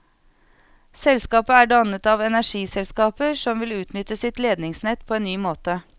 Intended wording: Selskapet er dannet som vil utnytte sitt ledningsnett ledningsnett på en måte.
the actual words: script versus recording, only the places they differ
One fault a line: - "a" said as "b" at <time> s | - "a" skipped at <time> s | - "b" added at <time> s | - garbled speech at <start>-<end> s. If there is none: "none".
- "av energiselskaper" added at 2.0 s
- "ledningsnett" skipped at 5.1 s
- "ny" added at 5.2 s